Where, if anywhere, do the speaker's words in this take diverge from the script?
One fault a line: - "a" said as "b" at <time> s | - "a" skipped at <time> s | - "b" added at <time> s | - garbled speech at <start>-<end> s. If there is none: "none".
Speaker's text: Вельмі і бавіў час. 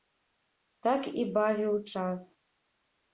- "Вельмі" said as "Так" at 0.9 s